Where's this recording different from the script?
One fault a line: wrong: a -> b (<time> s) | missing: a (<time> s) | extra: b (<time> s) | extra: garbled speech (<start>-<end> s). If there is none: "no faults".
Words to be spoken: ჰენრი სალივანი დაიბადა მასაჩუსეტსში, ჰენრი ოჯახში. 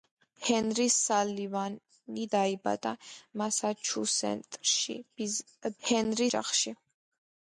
no faults